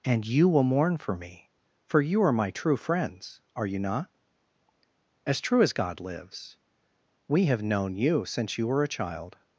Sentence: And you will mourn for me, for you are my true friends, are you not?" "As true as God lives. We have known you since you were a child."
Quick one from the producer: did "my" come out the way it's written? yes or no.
yes